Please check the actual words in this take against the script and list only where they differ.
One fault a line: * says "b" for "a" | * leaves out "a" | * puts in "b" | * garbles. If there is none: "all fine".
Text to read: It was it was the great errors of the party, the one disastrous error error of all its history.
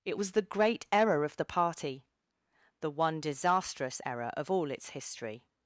* leaves out "it was"
* says "error" for "errors"
* leaves out "error"